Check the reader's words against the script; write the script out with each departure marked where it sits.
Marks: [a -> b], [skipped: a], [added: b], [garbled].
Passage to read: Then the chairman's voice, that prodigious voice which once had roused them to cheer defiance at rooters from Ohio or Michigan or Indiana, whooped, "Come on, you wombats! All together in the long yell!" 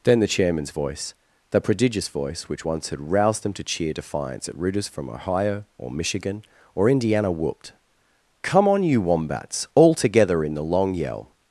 Then the chairman's voice, [that -> the] prodigious voice which once had roused them to cheer defiance at rooters from Ohio or Michigan or Indiana, whooped, "Come on, you wombats! All together in the long yell!"